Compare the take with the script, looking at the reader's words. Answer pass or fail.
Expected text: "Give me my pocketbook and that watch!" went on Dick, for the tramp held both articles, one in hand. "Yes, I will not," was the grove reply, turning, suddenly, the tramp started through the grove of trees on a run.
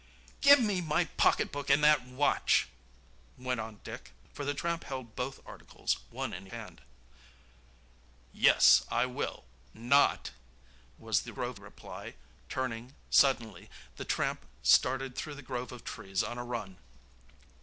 pass